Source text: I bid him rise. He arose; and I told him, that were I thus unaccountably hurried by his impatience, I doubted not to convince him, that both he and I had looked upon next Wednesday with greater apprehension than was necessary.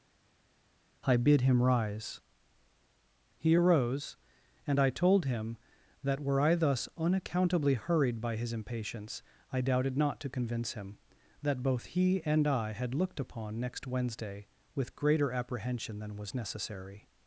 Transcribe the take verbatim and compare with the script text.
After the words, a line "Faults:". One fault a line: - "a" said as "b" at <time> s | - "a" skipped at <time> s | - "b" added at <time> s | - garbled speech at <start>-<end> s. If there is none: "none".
I bid him rise. He arose; and I told him, that were I thus unaccountably hurried by his impatience, I doubted not to convince him, that both he and I had looked upon next Wednesday with greater apprehension than was necessary.
Faults:
none